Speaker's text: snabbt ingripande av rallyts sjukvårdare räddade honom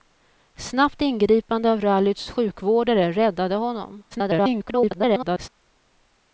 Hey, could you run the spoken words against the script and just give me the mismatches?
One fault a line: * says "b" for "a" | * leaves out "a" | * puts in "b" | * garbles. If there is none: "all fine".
* garbles